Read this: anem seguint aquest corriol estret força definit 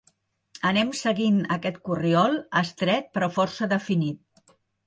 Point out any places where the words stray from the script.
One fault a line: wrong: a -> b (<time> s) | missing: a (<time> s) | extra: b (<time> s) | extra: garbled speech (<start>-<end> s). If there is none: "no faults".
extra: però (3.2 s)